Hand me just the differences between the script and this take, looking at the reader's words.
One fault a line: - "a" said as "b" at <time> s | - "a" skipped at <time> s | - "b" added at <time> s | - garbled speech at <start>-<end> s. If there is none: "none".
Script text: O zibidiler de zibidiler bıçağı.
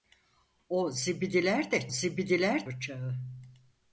none